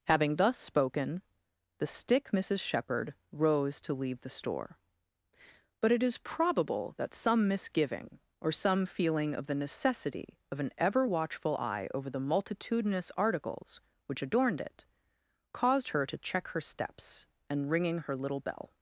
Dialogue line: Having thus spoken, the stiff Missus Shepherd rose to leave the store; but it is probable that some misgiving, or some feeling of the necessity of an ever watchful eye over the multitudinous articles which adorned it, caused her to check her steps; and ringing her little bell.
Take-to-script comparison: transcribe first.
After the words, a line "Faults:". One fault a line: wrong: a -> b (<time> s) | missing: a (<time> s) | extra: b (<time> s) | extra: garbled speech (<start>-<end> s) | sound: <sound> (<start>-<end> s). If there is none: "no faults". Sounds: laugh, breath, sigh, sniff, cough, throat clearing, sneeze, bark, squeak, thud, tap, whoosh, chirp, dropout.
Having thus spoken, the stick Missus Shepherd rose to leave the store; but it is probable that some misgiving, or some feeling of the necessity of an ever watchful eye over the multitudinous articles which adorned it, caused her to check her steps; and ringing her little bell.
Faults:
wrong: stiff -> stick (1.9 s)